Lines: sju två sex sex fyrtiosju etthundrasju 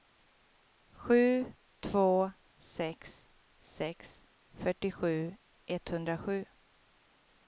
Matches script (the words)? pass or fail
pass